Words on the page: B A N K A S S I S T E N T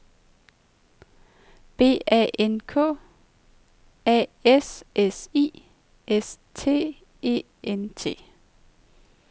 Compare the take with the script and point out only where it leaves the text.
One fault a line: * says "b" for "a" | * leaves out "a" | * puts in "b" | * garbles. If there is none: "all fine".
all fine